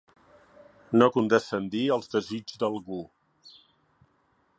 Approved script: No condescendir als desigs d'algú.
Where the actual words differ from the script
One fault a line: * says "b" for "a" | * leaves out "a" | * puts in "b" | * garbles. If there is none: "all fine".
all fine